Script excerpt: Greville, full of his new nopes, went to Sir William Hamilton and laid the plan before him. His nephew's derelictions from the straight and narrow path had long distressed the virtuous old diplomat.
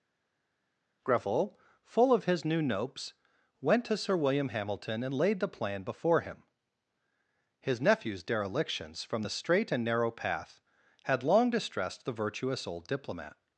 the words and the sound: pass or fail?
pass